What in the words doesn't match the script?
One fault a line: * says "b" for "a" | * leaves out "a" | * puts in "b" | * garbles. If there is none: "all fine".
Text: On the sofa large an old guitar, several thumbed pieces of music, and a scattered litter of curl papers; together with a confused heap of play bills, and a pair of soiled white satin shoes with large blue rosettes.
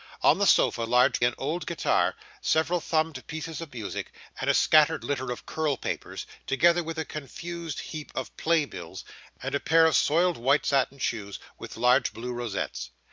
all fine